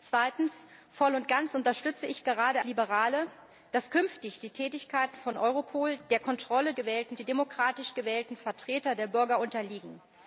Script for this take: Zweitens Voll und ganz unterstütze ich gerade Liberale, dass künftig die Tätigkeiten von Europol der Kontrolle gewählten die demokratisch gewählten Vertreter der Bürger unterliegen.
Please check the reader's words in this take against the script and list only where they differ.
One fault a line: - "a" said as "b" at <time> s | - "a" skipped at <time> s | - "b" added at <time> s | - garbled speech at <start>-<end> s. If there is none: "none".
none